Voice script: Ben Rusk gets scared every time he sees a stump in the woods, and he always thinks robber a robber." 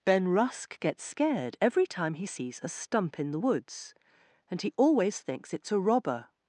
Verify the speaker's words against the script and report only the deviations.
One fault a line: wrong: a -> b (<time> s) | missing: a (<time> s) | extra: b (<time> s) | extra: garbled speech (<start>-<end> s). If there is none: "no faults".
wrong: robber -> it's (5.5 s)